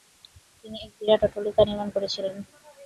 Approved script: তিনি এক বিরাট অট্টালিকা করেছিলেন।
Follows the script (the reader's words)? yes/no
no